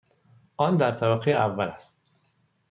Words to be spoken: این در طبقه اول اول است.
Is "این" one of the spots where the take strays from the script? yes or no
yes